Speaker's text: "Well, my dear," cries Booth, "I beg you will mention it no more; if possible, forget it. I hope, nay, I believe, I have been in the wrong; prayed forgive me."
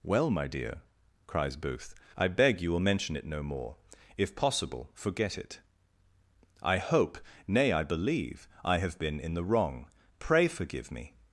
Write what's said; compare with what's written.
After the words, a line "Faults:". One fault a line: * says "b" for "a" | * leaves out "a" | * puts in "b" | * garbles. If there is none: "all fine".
"Well, my dear," cries Booth, "I beg you will mention it no more; if possible, forget it. I hope, nay, I believe, I have been in the wrong; pray forgive me."
Faults:
* says "pray" for "prayed"